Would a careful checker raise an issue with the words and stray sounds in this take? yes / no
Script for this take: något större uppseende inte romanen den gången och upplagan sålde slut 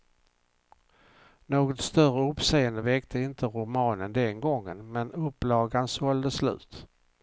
yes